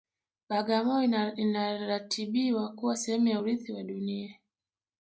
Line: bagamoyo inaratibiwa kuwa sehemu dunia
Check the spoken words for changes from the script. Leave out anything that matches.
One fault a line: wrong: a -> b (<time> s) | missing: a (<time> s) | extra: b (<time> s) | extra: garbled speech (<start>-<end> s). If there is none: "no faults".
extra: ya urithi wa (3.3 s)